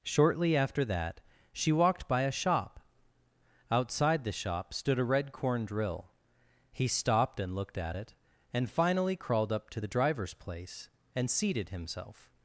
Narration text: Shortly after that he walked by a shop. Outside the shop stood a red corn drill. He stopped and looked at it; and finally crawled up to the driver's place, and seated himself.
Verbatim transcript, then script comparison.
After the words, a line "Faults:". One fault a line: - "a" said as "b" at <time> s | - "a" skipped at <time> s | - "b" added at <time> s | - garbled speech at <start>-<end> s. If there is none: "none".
Shortly after that she walked by a shop. Outside the shop stood a red corn drill. He stopped and looked at it; and finally crawled up to the driver's place, and seated himself.
Faults:
- "he" said as "she" at 1.5 s